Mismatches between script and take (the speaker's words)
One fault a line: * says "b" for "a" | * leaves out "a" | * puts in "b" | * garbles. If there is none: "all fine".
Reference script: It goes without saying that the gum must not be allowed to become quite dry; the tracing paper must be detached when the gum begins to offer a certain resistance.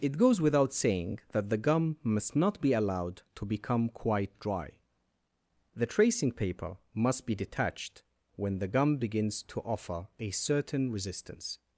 all fine